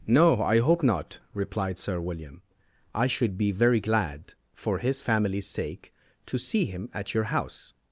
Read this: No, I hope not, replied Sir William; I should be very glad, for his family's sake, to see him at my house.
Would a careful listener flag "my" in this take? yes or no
yes